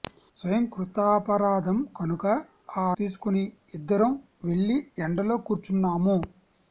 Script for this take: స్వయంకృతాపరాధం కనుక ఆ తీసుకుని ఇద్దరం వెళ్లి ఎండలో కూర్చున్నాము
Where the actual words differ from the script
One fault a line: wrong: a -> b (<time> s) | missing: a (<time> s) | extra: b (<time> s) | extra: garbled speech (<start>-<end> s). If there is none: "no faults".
no faults